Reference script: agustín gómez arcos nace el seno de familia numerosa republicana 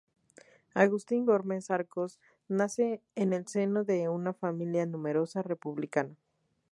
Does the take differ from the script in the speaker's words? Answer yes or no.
yes